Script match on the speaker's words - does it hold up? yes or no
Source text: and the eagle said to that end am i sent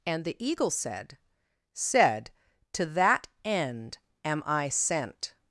no